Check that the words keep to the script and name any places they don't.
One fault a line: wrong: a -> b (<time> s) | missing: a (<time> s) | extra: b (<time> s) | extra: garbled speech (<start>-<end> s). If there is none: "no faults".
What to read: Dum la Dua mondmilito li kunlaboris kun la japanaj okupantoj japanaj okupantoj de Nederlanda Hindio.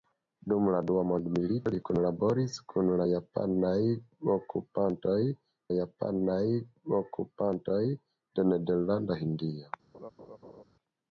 no faults